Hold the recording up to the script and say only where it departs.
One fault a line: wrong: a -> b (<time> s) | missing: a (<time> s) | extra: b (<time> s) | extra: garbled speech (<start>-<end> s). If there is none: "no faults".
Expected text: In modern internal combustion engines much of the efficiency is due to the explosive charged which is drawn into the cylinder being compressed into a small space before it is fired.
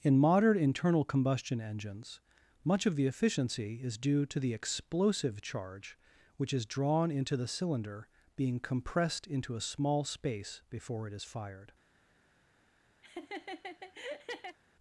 wrong: charged -> charge (5.4 s)